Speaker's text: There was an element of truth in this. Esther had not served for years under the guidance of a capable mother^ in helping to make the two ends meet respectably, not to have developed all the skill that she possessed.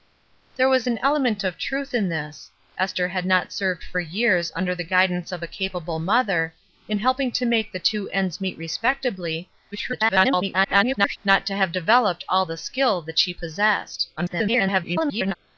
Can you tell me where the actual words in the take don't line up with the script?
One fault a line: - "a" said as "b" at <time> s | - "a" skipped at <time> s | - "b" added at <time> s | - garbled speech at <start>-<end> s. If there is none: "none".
- garbled speech at 9.7-11.2 s
- garbled speech at 14.2-15.4 s